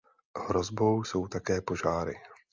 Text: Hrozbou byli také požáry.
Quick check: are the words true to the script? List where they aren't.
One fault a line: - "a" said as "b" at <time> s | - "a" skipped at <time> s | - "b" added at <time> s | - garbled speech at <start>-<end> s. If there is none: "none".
- "byli" said as "jsou" at 1.0 s